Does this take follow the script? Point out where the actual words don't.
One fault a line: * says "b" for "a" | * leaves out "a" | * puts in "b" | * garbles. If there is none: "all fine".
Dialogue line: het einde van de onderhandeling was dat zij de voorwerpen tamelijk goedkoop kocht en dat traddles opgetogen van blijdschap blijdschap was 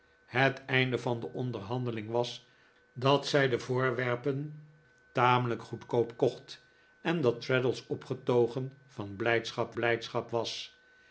all fine